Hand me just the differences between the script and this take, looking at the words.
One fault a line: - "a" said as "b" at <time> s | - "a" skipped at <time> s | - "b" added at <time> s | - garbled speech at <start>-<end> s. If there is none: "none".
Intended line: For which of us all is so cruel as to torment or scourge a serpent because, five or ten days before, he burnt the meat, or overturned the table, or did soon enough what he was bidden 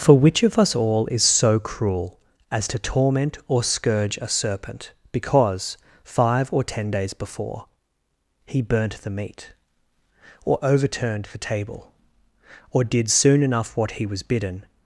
none